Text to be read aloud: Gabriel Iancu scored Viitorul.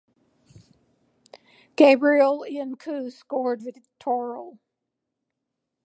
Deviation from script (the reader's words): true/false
false